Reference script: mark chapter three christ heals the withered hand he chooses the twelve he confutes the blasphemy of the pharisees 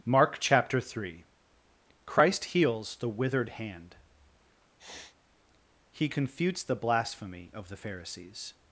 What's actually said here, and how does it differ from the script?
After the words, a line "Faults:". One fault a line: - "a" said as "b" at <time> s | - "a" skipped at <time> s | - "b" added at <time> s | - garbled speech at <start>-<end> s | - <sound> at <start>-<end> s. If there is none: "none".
mark chapter three christ heals the withered hand he confutes the blasphemy of the pharisees
Faults:
- sniff at 4.8-5.2 s
- "chooses the twelve he" skipped at 6.1 s